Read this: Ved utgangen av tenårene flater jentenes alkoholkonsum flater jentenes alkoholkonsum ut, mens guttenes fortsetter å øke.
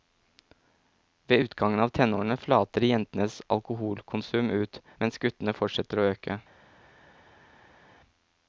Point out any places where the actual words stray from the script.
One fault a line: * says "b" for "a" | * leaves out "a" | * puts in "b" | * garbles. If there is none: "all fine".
* leaves out "flater jentenes alkoholkonsum"